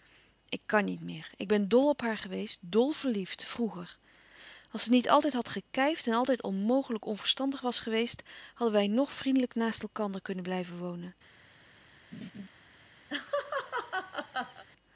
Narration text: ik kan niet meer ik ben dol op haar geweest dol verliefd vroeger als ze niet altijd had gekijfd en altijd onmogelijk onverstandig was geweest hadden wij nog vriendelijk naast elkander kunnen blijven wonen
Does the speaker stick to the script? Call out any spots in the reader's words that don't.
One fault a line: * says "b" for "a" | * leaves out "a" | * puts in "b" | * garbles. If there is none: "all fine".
all fine